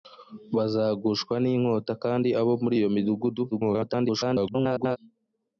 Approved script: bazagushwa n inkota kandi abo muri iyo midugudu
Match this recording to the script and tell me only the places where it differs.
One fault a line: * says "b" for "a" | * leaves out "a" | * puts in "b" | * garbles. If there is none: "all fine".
* garbles